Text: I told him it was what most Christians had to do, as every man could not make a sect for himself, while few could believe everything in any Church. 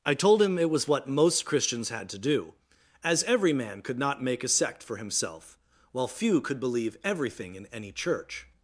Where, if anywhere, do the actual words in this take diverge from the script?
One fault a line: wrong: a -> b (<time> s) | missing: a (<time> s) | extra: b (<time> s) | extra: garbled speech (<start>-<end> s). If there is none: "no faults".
no faults